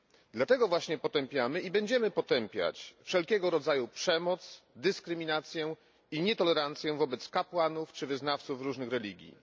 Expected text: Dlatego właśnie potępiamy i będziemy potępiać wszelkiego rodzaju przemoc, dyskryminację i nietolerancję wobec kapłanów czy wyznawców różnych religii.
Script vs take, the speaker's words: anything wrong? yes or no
no